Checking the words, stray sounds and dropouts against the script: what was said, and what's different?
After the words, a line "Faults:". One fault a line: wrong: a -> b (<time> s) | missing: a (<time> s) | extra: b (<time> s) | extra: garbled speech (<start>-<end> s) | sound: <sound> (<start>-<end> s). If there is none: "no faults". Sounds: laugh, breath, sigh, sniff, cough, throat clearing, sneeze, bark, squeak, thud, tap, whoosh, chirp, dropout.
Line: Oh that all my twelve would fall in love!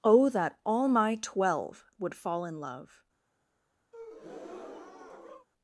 Oh that all my twelve would fall in love!
Faults:
sound: breath (3.9-5.5 s)